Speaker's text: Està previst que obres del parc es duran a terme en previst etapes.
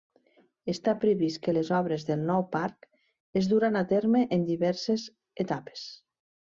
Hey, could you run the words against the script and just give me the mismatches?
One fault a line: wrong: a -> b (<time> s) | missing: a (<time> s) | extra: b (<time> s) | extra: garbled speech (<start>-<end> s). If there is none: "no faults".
extra: les (1.5 s)
extra: nou (2.3 s)
wrong: previst -> diverses (4.5 s)